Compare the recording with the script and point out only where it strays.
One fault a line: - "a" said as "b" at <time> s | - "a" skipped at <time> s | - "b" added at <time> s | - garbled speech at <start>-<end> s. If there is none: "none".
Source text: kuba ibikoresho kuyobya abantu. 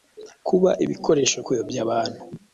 none